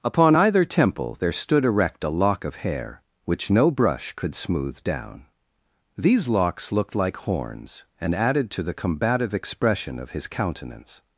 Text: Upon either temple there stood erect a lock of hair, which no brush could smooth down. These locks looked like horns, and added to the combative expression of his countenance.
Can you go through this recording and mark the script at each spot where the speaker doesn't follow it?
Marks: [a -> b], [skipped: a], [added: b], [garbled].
Upon either temple there stood erect a lock of hair, which no brush could smooth down. These locks looked like horns, and added to the combative expression of his countenance.